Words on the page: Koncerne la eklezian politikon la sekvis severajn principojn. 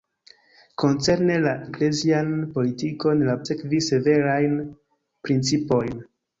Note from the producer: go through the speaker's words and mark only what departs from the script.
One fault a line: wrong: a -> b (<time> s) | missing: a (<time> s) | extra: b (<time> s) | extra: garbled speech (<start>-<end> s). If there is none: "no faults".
no faults